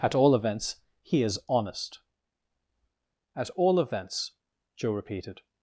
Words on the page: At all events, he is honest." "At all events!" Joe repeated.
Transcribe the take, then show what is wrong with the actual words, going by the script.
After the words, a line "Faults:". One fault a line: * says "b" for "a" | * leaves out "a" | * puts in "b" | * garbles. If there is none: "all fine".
At all events, he is honest." "At all events!" Joe repeated.
Faults:
all fine